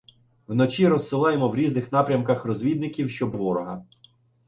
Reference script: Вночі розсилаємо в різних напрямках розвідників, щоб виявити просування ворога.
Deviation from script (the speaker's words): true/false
true